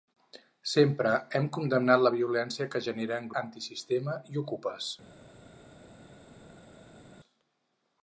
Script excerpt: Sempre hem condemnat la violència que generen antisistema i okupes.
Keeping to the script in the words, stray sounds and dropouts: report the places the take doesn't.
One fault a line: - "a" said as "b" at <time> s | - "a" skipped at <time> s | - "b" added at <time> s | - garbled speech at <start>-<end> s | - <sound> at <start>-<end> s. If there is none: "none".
none